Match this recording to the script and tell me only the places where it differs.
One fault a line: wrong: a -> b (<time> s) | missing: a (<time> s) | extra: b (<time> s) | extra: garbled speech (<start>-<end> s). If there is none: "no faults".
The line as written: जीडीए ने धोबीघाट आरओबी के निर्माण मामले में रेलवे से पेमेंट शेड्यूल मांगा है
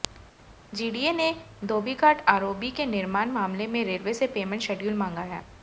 no faults